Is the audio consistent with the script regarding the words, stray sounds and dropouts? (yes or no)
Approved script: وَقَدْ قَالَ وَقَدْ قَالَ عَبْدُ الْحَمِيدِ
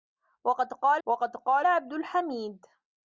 yes